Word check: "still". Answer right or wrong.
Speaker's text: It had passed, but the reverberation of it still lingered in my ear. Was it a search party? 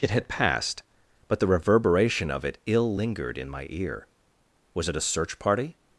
wrong